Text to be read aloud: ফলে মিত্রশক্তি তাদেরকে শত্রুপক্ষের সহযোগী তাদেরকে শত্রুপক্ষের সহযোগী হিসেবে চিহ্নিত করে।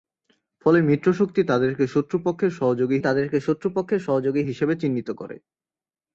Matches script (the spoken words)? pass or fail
pass